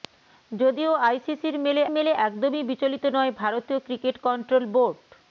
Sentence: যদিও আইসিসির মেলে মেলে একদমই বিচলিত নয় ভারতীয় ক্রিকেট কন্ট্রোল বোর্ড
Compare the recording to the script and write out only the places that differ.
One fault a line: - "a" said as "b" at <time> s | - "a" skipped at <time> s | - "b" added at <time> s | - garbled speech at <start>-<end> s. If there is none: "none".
none